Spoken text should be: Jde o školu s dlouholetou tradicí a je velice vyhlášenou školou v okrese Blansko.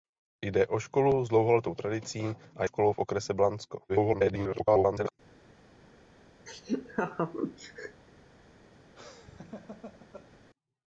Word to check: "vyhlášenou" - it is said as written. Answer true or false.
false